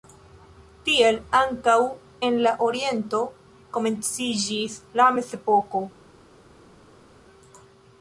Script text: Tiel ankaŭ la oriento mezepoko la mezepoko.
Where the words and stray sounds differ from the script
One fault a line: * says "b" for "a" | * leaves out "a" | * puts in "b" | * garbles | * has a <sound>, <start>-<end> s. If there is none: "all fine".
* puts in "en"
* says "komenciĝis" for "mezepoko"